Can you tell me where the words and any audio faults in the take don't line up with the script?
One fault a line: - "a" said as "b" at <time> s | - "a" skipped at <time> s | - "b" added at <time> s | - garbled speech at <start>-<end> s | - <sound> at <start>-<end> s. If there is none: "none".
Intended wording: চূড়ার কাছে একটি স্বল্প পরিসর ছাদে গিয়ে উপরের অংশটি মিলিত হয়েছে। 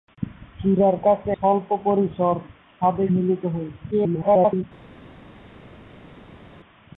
- "একটি" skipped at 1.3 s
- "গিয়ে উপরের অংশটি" skipped at 3.0 s
- garbled speech at 3.9-4.6 s